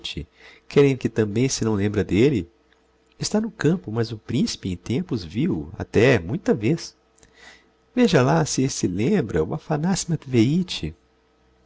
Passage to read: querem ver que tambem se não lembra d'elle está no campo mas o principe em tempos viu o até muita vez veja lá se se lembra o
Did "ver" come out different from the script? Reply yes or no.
yes